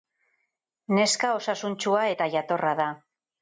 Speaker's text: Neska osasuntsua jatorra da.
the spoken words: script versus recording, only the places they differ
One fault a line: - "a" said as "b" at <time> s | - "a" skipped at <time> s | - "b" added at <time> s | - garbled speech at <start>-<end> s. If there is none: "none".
- "eta" added at 2.1 s